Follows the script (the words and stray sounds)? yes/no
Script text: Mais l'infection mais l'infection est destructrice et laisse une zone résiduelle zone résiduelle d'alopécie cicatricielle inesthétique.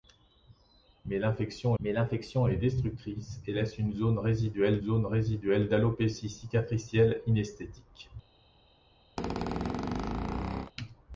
no